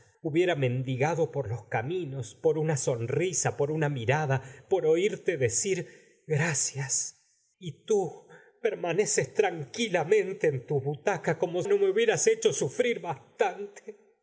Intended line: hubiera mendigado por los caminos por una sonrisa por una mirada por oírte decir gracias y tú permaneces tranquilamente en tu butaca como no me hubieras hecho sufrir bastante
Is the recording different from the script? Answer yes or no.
no